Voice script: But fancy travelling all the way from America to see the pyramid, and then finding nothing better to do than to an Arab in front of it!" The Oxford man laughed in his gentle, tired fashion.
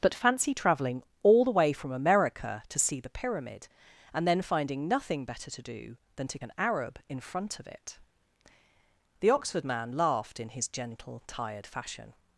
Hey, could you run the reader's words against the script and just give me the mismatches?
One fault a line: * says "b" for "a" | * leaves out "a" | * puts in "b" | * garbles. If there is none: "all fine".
all fine